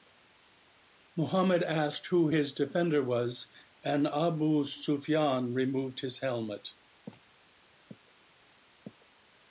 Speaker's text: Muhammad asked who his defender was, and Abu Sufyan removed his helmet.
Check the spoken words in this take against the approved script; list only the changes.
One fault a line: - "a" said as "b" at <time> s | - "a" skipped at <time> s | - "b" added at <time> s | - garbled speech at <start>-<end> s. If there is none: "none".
none